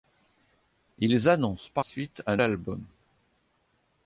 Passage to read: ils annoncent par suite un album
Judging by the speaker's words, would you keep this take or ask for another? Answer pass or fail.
pass